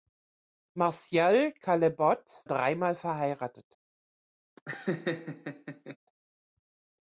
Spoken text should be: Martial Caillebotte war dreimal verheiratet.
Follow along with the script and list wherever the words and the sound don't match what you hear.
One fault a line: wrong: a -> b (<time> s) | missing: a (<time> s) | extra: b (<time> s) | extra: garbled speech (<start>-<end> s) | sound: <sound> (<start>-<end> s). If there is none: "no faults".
missing: war (2.4 s)
sound: laugh (4.6-6.0 s)